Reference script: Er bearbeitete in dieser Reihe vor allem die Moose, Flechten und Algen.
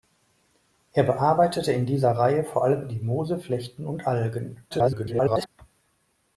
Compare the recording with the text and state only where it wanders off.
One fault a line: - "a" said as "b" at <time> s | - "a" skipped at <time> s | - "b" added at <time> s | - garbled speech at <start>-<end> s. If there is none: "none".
- garbled speech at 4.7-5.5 s